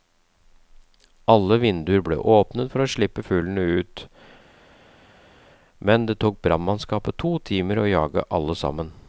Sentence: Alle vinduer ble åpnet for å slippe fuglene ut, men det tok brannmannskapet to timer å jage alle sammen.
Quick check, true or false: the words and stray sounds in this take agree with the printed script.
true